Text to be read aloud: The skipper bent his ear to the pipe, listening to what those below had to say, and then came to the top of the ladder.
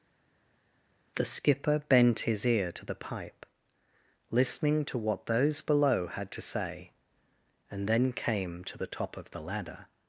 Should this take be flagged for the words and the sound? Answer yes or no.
no